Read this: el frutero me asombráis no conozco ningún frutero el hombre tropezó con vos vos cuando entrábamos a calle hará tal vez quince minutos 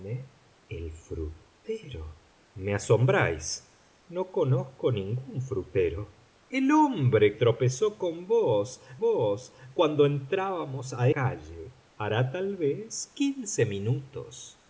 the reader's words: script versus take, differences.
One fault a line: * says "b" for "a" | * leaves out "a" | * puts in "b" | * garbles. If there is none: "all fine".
all fine